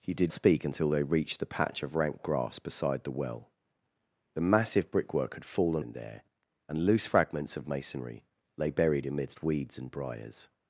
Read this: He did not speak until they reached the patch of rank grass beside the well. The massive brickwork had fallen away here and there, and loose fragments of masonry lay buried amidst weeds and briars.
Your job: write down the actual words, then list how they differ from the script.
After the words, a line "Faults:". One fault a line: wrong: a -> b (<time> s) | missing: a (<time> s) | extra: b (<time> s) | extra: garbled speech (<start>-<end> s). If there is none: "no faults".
He did speak until they reached the patch of rank grass beside the well. The massive brickwork had fallen and there, and loose fragments of masonry lay buried amidst weeds and briars.
Faults:
missing: not (0.3 s)
missing: away here (5.8 s)